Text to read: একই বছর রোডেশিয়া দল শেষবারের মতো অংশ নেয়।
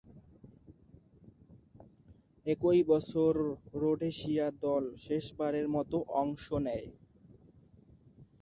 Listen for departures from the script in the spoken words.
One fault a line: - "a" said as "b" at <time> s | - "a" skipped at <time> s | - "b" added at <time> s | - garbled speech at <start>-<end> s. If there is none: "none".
none